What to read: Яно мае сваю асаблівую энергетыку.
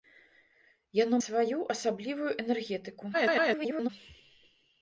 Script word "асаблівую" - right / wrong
right